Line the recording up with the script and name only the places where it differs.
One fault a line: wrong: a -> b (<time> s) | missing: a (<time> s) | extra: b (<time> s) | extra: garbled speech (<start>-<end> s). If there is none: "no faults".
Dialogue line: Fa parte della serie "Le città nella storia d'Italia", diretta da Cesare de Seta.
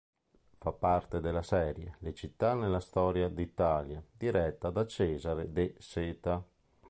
no faults